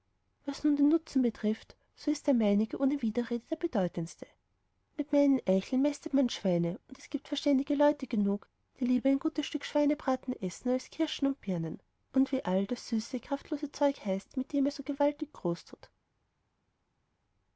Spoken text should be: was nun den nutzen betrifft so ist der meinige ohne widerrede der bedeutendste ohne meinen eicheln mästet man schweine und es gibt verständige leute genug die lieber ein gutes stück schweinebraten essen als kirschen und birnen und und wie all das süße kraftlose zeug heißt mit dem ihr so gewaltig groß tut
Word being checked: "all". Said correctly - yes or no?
yes